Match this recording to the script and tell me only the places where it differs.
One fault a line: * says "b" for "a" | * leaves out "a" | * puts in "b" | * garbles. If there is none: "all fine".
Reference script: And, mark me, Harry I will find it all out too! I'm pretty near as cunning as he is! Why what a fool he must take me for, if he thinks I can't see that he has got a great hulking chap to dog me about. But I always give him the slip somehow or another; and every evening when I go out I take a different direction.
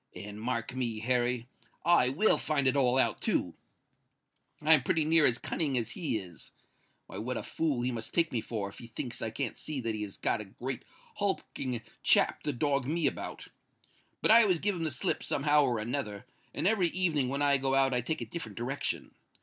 all fine